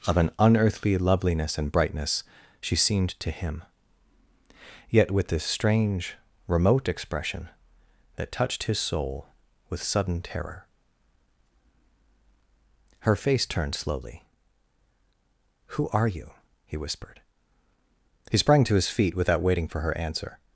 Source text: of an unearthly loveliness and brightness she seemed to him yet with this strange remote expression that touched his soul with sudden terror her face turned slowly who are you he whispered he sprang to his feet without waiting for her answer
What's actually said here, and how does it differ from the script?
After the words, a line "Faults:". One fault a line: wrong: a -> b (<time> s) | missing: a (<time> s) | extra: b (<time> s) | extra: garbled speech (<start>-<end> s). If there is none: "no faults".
of an unearthly loveliness and brightness she seemed to him yet with this strange remote expression that touched his soul with sudden terror her face turned slowly who are you he whispered he sprang to his feet without waiting for her answer
Faults:
no faults